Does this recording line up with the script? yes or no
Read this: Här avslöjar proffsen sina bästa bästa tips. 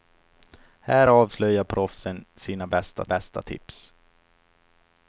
yes